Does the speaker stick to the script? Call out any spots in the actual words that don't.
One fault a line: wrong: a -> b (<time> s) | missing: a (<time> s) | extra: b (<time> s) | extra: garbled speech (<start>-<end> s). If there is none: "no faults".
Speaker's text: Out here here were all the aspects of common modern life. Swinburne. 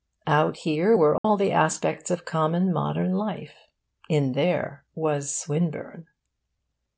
missing: here (1.0 s)
extra: In there was (4.1 s)